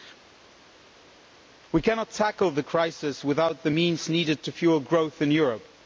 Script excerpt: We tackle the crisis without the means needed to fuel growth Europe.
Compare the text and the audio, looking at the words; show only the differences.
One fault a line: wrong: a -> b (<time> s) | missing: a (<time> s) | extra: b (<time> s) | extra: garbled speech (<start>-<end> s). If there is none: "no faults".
extra: cannot (1.8 s)
extra: in (5.2 s)